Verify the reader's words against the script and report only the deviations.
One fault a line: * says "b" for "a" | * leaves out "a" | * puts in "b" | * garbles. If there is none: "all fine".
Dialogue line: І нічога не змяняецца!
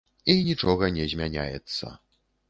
all fine